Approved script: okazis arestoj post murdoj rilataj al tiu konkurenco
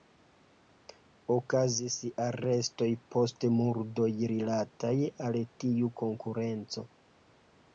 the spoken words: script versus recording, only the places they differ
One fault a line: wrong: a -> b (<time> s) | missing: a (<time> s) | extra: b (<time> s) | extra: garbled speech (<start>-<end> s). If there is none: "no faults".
no faults